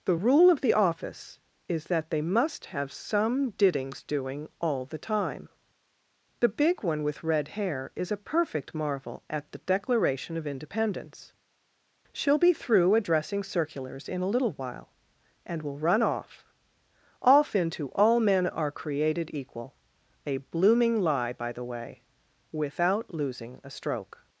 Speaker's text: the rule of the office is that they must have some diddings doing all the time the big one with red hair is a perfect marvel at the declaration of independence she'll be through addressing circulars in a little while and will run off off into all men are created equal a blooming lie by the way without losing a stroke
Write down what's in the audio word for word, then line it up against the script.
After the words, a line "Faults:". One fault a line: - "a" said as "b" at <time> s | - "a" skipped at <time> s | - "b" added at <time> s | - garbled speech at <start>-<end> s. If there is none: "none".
the rule of the office is that they must have some diddings doing all the time the big one with red hair is a perfect marvel at the declaration of independence she'll be through addressing circulars in a little while and will run off off into all men are created equal a blooming lie by the way without losing a stroke
Faults:
none